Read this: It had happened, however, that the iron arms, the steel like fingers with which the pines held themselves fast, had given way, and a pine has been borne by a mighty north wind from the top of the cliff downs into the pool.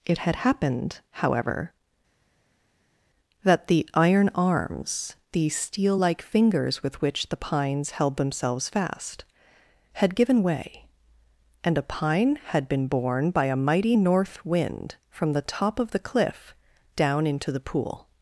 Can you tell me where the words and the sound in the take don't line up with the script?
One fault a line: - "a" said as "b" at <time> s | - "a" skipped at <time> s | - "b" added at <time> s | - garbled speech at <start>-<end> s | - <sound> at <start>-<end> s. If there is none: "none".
- "has" said as "had" at 12.4 s
- "downs" said as "down" at 16.9 s